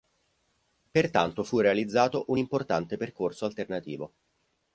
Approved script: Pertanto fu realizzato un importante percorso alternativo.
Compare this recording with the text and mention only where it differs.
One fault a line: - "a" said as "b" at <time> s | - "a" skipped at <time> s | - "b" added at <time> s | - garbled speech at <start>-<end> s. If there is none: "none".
none